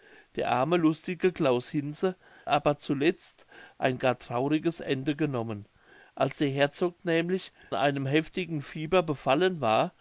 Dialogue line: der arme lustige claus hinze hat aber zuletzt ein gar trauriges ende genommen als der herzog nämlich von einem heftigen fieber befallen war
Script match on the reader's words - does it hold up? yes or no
no